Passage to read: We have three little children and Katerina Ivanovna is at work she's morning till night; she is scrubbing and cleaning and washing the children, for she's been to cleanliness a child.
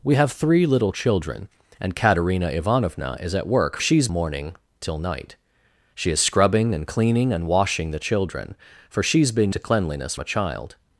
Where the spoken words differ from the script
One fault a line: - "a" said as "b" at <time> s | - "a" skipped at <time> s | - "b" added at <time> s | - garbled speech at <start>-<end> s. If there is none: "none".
none